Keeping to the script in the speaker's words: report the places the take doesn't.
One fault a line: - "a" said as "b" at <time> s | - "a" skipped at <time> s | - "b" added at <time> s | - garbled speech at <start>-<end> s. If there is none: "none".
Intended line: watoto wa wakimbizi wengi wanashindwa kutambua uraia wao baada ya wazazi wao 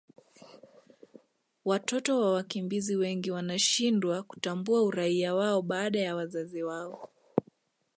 none